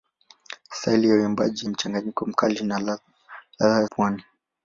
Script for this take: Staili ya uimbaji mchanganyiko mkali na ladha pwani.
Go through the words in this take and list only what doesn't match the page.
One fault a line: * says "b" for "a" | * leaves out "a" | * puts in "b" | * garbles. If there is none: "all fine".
all fine